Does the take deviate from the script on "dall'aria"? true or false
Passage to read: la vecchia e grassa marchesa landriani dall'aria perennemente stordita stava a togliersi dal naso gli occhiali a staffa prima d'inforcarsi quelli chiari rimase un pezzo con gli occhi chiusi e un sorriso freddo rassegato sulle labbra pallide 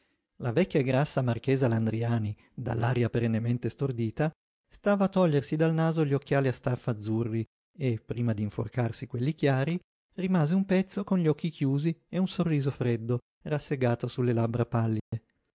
false